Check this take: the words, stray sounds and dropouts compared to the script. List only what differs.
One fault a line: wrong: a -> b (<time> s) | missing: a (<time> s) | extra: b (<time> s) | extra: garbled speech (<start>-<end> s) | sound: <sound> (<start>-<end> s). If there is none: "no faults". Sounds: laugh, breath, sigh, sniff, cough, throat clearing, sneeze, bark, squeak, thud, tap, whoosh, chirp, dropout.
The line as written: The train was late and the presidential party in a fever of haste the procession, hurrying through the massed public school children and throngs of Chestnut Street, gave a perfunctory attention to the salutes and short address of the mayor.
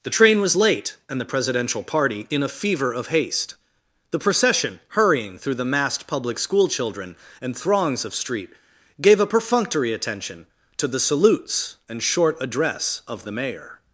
missing: Chestnut (8.1 s)